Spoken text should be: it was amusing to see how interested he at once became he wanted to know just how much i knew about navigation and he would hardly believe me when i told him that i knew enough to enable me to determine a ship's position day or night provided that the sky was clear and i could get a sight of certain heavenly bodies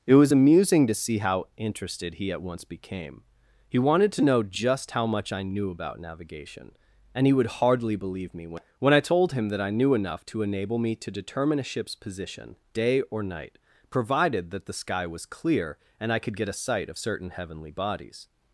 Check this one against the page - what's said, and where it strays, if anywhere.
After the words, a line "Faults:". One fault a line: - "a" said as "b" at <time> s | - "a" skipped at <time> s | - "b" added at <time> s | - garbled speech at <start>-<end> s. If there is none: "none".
it was amusing to see how interested he at once became he wanted to know just how much i knew about navigation and he would hardly believe me when when i told him that i knew enough to enable me to determine a ship's position day or night provided that the sky was clear and i could get a sight of certain heavenly bodies
Faults:
- "when" added at 8.8 s